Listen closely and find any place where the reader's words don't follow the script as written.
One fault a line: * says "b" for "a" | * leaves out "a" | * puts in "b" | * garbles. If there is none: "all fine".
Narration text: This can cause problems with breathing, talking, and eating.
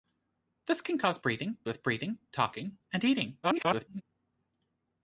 * says "breathing" for "problems"
* garbles